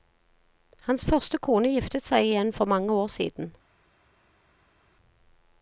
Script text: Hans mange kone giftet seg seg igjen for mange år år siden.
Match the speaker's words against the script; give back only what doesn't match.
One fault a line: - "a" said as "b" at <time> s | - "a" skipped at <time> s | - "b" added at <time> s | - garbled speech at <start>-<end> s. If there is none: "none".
- "mange" said as "første" at 1.1 s
- "seg" skipped at 2.2 s
- "år" skipped at 3.1 s